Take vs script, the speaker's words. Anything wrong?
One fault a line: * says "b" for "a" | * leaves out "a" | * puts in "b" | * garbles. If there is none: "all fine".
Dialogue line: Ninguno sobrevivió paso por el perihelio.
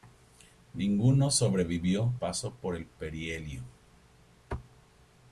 all fine